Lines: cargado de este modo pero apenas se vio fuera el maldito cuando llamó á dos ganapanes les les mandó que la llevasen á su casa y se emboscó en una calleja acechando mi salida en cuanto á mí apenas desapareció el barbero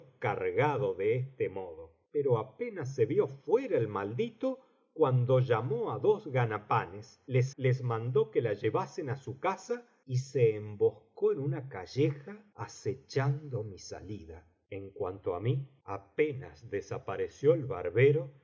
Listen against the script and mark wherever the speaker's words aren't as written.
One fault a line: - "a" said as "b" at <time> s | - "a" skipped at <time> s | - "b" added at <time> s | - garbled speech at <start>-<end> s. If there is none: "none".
none